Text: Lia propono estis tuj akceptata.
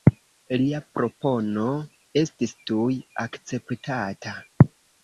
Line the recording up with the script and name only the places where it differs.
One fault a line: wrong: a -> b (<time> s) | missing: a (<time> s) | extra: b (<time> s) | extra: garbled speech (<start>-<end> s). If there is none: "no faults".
no faults